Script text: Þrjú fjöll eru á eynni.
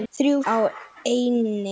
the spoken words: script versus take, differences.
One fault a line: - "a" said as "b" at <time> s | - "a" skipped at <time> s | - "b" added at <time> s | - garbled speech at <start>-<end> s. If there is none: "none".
- "fjöll eru" skipped at 0.4 s